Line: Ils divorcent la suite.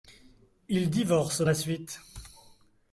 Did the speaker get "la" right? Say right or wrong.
right